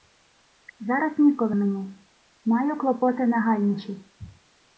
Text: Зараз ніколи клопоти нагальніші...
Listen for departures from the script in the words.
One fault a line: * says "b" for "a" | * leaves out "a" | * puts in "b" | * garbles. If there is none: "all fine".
* puts in "мені Маю"